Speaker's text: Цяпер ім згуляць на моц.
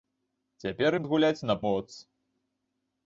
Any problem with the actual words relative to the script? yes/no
no